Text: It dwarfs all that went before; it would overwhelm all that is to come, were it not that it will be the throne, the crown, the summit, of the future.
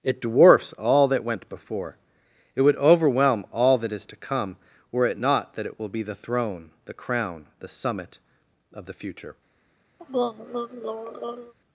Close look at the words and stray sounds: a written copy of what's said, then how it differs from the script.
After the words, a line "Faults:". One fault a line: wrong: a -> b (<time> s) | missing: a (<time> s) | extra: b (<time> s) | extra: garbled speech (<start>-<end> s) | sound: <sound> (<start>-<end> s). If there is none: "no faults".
It dwarfs all that went before; it would overwhelm all that is to come, were it not that it will be the throne, the crown, the summit, of the future.
Faults:
sound: throat clearing (10.0-11.5 s)